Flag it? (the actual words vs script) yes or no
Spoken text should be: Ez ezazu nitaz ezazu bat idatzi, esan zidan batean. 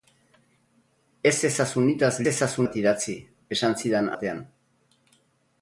no